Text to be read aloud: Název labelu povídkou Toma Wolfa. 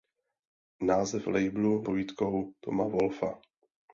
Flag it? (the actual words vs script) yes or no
no